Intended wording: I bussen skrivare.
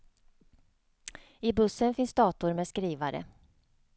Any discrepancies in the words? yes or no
yes